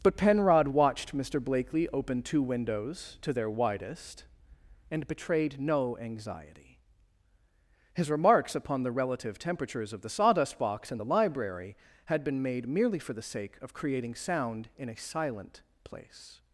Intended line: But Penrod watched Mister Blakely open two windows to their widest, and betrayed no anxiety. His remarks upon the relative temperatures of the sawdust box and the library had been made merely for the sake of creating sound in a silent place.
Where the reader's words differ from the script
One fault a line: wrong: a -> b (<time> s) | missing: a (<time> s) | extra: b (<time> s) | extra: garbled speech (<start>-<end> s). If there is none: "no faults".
no faults